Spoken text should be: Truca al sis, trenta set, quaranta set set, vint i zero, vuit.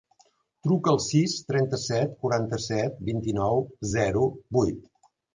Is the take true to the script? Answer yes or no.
no